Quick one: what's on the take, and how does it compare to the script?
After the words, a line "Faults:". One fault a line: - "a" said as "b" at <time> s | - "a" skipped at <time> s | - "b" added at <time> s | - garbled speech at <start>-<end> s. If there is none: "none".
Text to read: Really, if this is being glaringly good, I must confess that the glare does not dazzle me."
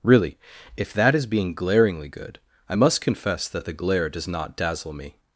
Really, if that is being glaringly good, I must confess that the glare does not dazzle me."
Faults:
- "this" said as "that" at 0.9 s